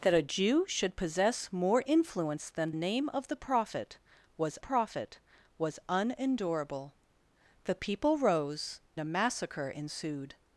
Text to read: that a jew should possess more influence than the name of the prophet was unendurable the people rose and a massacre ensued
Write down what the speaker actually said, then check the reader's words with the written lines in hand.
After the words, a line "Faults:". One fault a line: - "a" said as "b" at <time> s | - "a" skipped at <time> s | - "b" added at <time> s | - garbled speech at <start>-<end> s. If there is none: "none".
that a jew should possess more influence than name of the prophet was prophet was unendurable the people rose a massacre ensued
Faults:
- "the" skipped at 2.7 s
- "prophet was" added at 4.6 s
- "and" skipped at 8.8 s